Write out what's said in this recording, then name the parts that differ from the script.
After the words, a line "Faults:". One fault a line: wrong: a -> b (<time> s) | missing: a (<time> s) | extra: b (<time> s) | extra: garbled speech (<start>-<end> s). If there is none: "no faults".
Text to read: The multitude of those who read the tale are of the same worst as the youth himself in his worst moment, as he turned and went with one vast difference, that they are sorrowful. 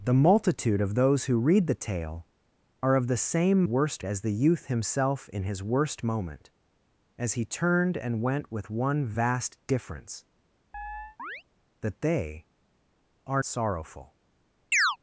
The multitude of those who read the tale are of the same worst as the youth himself in his worst moment, as he turned and went with one vast difference, that they are sorrowful.
Faults:
no faults